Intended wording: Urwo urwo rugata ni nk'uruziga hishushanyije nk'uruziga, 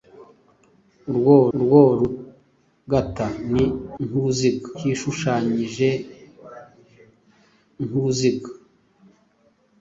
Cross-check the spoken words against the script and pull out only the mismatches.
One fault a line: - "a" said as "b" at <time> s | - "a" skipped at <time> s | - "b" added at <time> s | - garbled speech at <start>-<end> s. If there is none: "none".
none